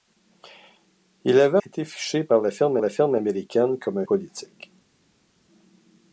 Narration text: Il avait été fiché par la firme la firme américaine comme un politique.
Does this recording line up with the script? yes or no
yes